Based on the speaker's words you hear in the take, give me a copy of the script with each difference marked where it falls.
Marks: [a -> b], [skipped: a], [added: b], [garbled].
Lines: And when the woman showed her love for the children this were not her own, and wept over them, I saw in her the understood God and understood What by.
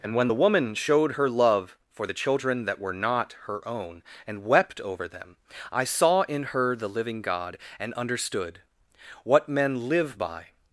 And when the woman showed her love for the children [this -> that] were not her own, and wept over them, I saw in her the [understood -> living] God and understood What [added: men live] by.